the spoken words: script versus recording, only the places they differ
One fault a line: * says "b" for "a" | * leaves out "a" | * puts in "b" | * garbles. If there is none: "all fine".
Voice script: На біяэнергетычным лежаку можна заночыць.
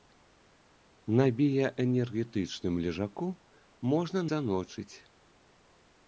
all fine